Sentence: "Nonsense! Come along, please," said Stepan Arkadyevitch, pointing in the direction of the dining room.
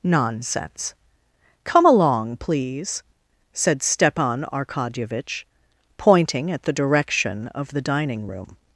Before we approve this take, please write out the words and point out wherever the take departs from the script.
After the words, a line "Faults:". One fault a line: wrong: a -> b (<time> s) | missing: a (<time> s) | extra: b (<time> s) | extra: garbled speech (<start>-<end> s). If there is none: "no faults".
"Nonsense! Come along, please," said Stepan Arkadyevitch, pointing at the direction of the dining room.
Faults:
wrong: in -> at (6.5 s)